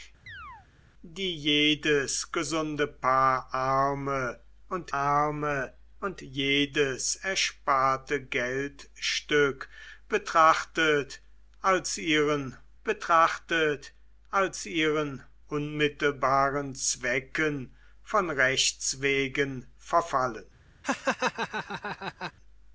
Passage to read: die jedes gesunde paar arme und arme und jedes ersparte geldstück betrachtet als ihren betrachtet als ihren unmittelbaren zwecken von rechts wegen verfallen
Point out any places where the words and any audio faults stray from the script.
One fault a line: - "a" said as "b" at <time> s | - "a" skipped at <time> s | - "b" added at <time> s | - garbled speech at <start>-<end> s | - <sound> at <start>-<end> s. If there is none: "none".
- chirp at 0.3-0.7 s
- laugh at 20.8-22.3 s